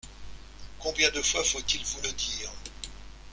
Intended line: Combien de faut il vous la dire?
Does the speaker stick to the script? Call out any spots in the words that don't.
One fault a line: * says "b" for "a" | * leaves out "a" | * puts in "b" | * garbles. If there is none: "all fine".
* puts in "fois"
* says "le" for "la"